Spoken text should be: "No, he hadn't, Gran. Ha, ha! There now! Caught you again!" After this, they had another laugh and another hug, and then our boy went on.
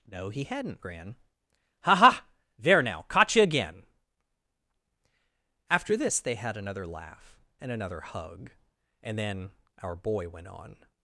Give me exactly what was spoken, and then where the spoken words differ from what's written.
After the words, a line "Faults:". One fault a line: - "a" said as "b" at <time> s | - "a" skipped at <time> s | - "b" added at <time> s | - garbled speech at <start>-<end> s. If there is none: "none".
"No, he hadn't, Gran. Ha, ha! There now! Caught you again!" After this, they had another laugh and another hug, and then our boy went on.
Faults:
none